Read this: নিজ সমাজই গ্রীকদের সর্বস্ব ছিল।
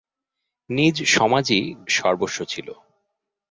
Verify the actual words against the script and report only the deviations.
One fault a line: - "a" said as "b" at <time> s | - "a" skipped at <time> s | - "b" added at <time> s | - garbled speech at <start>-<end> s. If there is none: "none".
- "গ্রীকদের" skipped at 1.6 s